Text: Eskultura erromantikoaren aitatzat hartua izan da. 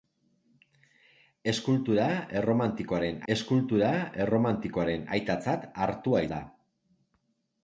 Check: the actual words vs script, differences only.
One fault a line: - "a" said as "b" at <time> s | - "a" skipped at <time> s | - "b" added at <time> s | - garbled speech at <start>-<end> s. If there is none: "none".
- "eskultura erromantikoaren" added at 3.3 s
- "izan" skipped at 6.2 s